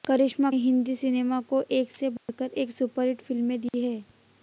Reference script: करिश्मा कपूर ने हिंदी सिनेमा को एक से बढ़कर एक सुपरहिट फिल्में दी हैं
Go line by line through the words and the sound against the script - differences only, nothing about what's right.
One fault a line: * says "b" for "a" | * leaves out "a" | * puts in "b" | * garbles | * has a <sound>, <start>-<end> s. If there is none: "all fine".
* leaves out "कपूर ने"
* has a dropout, 2.2-2.3 s
* has a dropout, 3.7-3.7 s